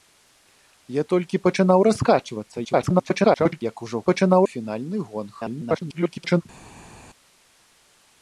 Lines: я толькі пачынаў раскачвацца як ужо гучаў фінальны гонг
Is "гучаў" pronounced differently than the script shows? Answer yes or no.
yes